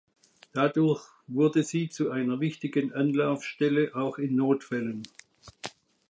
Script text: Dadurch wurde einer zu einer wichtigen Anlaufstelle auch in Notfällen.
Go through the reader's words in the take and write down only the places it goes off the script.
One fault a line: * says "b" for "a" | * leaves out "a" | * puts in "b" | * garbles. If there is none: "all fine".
* says "sie" for "einer"